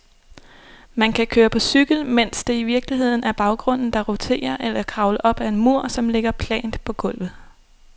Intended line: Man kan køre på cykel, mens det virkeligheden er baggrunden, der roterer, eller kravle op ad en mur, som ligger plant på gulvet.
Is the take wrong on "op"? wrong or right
right